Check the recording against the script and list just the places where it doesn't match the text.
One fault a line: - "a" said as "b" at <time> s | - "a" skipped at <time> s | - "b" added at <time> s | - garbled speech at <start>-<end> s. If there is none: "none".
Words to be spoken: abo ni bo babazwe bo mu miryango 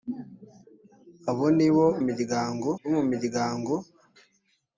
- "babazwe" said as "miryango" at 2.1 s